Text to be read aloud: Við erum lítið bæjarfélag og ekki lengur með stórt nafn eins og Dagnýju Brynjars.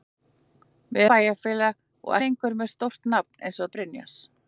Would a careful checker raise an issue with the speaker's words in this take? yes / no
yes